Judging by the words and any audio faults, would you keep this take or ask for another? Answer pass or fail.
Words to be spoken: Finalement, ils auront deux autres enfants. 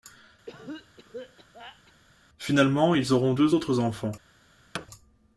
fail